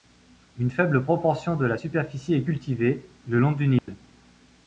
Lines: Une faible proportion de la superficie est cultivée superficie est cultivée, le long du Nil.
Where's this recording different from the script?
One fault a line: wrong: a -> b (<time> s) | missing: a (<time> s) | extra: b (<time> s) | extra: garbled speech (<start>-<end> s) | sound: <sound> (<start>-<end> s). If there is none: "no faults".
missing: superficie est cultivée (3.1 s)
sound: dropout (3.8-3.9 s)